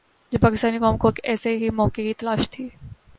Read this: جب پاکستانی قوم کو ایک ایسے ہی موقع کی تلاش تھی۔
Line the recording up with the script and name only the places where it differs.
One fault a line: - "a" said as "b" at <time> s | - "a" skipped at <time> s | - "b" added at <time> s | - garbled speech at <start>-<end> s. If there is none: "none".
none